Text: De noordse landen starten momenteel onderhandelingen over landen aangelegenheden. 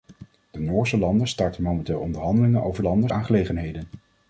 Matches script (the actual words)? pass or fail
pass